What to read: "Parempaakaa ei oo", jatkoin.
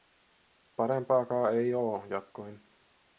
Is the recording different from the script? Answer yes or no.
no